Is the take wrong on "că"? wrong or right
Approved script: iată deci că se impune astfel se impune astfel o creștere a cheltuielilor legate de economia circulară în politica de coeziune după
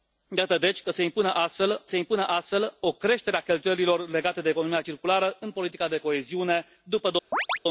right